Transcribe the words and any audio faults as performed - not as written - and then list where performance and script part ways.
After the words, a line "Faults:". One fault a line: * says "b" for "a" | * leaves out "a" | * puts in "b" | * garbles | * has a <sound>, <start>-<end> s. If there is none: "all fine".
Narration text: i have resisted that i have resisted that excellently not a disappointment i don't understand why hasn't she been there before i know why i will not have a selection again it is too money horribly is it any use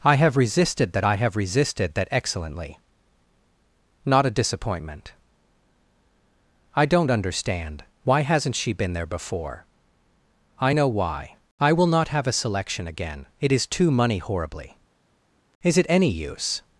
i have resisted that i have resisted that excellently not a disappointment i don't understand why hasn't she been there before i know why i will not have a selection again it is too money horribly is it any use
Faults:
all fine